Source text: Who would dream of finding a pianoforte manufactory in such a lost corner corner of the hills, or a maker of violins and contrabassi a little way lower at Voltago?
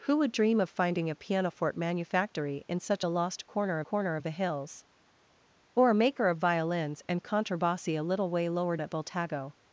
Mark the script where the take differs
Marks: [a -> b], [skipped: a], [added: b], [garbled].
Who would dream of finding a pianoforte manufactory in such a lost corner corner of the hills, or a maker of violins and contrabassi a little way lower at Voltago?